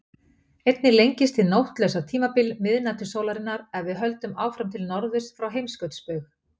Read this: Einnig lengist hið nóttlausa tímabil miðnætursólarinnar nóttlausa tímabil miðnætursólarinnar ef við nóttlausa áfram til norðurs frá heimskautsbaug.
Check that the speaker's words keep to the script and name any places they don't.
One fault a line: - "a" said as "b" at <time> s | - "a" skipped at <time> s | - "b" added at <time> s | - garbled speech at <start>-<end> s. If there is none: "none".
- "nóttlausa tímabil miðnætursólarinnar" skipped at 3.7 s
- "nóttlausa" said as "höldum" at 4.0 s